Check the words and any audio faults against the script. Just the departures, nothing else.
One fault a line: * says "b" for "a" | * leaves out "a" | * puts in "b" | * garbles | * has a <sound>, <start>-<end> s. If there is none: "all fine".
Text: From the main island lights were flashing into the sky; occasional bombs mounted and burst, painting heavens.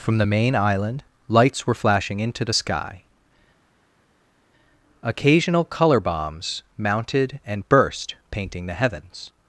* puts in "color"
* puts in "the"